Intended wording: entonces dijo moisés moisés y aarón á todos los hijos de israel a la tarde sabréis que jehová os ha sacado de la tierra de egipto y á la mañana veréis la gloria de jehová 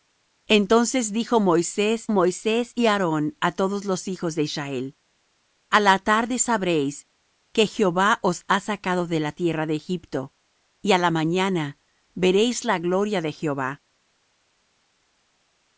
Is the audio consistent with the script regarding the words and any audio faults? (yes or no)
yes